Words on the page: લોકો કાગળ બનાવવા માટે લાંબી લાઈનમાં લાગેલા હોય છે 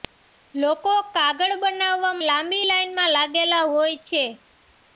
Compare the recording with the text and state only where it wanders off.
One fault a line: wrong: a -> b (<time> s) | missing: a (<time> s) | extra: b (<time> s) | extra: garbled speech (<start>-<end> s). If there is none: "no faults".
missing: માટે (2.1 s)